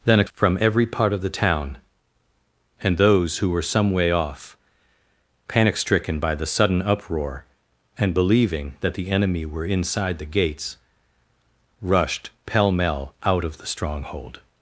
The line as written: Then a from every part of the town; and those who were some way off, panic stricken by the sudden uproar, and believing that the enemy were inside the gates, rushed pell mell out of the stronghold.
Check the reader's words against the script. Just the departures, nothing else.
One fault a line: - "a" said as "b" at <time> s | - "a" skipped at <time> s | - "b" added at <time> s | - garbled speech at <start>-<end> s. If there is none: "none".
none